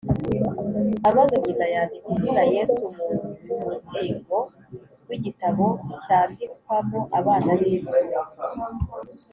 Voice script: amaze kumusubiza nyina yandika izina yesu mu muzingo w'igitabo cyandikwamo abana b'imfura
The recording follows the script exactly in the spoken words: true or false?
false